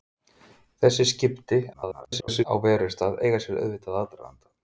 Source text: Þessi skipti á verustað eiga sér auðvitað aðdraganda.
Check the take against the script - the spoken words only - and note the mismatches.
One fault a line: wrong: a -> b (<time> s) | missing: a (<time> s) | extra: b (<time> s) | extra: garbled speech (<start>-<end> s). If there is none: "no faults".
extra: garbled speech (1.7-2.4 s)